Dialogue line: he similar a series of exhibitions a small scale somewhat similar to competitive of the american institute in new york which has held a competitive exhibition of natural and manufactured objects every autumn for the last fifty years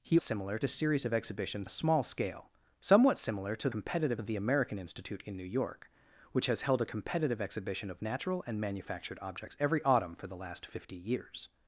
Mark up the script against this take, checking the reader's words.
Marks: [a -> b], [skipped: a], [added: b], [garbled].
he similar a series of exhibitions a small scale somewhat similar to competitive of the american institute in new york which has held a competitive exhibition of natural and manufactured objects every autumn for the last fifty years